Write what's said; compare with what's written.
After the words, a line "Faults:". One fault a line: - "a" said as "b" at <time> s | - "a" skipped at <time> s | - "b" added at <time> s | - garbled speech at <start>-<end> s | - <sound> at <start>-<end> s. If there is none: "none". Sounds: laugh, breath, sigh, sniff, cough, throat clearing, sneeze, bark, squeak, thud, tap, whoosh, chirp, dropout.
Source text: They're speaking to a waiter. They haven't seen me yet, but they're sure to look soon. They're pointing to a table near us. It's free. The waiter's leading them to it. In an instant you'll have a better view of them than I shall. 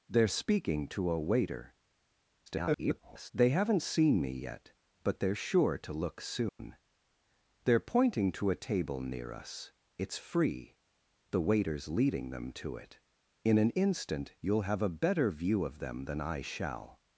They're speaking to a waiter. [garbled] They haven't seen me yet, but they're sure to look soon. They're pointing to a table near us. It's free. The waiter's leading them to it. In an instant you'll have a better view of them than I shall.
Faults:
- garbled speech at 2.5-3.3 s
- dropout at 6.5-6.6 s